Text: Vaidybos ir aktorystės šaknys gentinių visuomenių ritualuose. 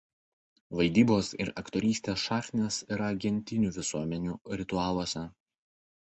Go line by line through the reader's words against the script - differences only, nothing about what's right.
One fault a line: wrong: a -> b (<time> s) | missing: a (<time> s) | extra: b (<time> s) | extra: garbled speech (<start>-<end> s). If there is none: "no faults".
extra: yra (3.0 s)